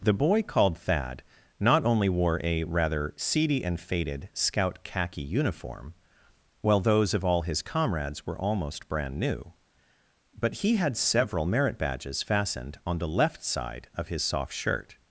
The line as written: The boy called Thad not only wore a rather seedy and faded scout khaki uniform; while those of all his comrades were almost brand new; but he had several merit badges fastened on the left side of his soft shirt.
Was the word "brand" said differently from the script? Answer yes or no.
no